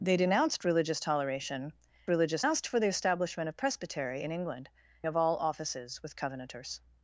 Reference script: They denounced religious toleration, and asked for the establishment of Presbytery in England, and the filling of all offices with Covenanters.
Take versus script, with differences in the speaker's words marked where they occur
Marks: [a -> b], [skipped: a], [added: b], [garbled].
They denounced religious toleration, [and -> religious] asked for the establishment of Presbytery in England, [skipped: and the filling] of all offices with Covenanters.